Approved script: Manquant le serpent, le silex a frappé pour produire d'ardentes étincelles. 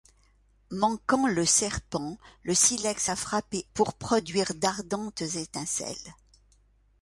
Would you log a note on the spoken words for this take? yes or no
no